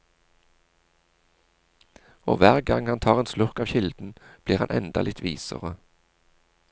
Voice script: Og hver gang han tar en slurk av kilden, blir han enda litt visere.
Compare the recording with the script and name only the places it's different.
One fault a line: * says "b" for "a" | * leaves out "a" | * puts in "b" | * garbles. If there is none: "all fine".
all fine